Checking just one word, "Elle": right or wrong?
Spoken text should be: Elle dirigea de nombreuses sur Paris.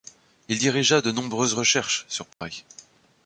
wrong